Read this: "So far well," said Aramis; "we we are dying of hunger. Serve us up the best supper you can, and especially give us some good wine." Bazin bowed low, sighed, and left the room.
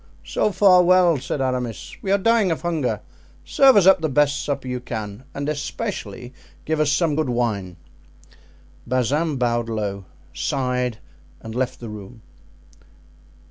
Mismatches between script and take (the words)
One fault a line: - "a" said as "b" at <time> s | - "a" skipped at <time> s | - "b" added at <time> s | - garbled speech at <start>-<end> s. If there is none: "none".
- "we" skipped at 2.1 s